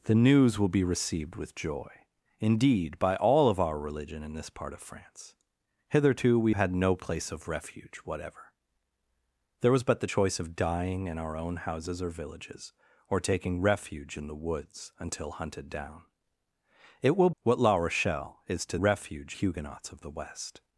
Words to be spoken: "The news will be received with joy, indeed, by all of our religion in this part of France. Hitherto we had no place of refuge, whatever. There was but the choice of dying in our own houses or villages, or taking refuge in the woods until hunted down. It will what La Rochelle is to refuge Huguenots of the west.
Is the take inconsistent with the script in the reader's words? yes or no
no